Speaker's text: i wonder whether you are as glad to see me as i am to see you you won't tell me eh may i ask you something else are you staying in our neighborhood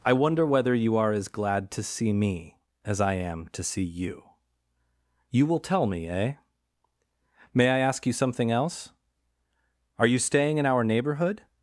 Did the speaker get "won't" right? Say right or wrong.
wrong